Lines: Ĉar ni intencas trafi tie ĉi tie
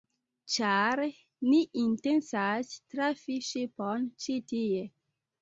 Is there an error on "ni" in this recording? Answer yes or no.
no